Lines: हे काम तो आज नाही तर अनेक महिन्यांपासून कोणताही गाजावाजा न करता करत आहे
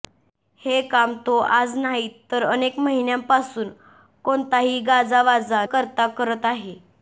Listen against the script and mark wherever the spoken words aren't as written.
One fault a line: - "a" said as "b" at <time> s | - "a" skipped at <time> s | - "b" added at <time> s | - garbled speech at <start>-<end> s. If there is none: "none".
- "न" skipped at 5.6 s